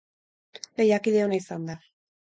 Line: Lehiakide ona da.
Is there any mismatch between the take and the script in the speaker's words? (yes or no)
yes